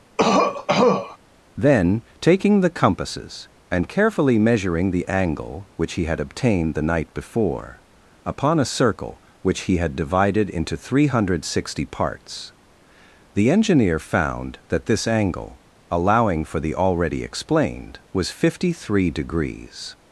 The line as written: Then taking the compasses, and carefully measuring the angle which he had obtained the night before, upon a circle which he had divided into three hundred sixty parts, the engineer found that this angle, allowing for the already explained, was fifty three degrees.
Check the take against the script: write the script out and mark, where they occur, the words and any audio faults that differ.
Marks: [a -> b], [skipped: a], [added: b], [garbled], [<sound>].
[cough] Then taking the compasses, and carefully measuring the angle which he had obtained the night before, upon a circle which he had divided into three hundred sixty parts, the engineer found that this angle, allowing for the already explained, was fifty three degrees.